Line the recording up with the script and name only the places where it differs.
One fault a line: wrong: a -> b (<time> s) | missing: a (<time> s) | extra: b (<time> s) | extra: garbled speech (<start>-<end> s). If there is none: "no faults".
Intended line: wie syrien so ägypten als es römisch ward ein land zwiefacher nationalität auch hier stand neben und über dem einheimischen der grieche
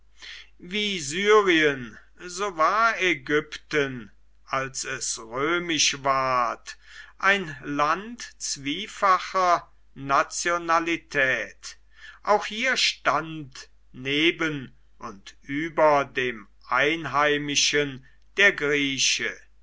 extra: war (2.6 s)